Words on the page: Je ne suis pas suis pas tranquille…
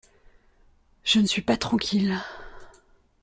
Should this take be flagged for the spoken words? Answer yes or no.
yes